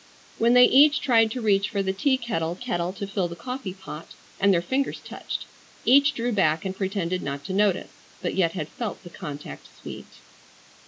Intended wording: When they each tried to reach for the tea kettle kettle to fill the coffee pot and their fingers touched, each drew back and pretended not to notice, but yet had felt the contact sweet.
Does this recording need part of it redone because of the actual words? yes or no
no